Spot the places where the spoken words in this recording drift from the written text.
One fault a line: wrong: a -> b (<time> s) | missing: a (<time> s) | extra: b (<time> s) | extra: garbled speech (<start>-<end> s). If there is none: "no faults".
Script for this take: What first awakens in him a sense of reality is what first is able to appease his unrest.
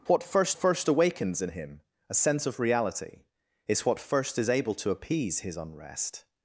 extra: first (0.5 s)